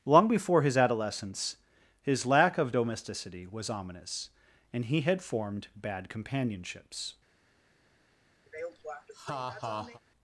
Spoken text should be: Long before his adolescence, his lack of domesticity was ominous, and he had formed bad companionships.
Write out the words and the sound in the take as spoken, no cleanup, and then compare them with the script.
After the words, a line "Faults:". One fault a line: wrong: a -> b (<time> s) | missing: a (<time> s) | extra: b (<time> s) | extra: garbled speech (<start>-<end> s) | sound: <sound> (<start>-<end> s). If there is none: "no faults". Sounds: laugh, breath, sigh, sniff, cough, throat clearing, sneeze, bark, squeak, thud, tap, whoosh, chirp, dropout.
Long before his adolescence, his lack of domesticity was ominous, and he had formed bad companionships.
Faults:
sound: laugh (8.5-10.0 s)